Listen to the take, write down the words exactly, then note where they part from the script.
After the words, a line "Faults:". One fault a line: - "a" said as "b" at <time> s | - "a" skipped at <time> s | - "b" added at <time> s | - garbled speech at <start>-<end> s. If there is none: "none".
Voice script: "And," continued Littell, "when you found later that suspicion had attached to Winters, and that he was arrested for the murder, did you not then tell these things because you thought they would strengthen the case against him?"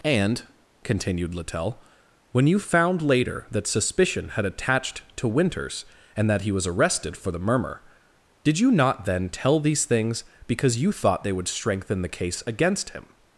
"And," continued Littell, "when you found later that suspicion had attached to Winters, and that he was arrested for the murmur, did you not then tell these things because you thought they would strengthen the case against him?"
Faults:
- "murder" said as "murmur" at 7.4 s